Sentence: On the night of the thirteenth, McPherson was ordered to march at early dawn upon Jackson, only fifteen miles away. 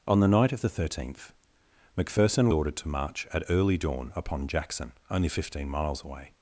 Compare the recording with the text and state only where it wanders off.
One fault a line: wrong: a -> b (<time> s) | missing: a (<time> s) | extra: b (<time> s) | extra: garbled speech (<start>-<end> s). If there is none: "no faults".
missing: was (2.5 s)